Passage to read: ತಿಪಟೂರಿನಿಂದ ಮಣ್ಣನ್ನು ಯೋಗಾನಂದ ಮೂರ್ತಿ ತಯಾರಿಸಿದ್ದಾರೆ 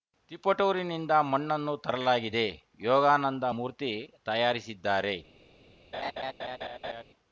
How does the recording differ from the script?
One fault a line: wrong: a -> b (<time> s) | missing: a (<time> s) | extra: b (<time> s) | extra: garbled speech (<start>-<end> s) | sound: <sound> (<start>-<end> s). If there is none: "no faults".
extra: ತರಲಾಗಿದೆ (1.8 s)
sound: laugh (5.9-7.0 s)